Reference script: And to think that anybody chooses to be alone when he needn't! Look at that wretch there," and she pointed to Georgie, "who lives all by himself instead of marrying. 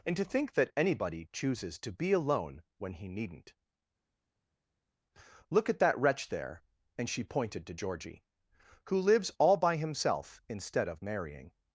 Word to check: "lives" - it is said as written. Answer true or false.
true